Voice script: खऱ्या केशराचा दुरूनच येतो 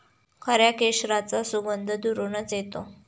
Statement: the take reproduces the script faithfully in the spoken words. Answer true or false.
false